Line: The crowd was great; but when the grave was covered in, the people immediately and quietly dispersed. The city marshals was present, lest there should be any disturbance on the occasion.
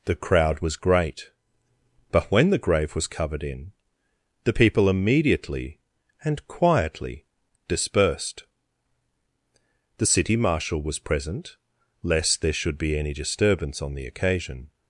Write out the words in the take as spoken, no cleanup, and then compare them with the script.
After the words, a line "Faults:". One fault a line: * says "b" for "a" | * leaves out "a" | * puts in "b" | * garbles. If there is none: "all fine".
The crowd was great; but when the grave was covered in, the people immediately and quietly dispersed. The city marshal was present, lest there should be any disturbance on the occasion.
Faults:
* says "marshal" for "marshals"